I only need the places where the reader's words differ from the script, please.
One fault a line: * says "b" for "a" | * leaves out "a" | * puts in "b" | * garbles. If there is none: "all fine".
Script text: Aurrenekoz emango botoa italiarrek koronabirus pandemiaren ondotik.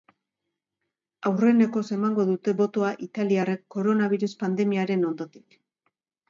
* puts in "dute"